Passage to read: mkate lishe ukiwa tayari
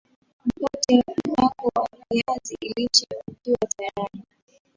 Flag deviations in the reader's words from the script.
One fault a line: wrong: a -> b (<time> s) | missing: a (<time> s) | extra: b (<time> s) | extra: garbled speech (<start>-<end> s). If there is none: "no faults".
extra: wako wa viazi (1.4 s)